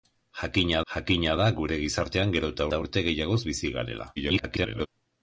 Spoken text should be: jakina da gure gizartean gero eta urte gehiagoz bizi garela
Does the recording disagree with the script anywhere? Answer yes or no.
yes